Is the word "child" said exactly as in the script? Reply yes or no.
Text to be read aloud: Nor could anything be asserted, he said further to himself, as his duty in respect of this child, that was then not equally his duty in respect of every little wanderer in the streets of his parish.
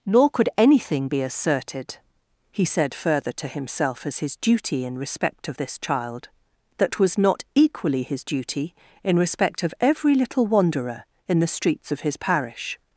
yes